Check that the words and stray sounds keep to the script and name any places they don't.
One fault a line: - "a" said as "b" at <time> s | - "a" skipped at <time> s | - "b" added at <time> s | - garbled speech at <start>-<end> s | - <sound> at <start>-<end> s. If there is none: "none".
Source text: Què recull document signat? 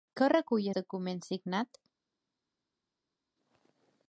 none